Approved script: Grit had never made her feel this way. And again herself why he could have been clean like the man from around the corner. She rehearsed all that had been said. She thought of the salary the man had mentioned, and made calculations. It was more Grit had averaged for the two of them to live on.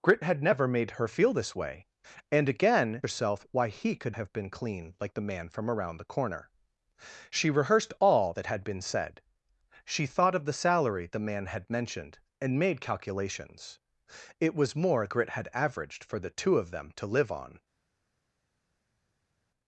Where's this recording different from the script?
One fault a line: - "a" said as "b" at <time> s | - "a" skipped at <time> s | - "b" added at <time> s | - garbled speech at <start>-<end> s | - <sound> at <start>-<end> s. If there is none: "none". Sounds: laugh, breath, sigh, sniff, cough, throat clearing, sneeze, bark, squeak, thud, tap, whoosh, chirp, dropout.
none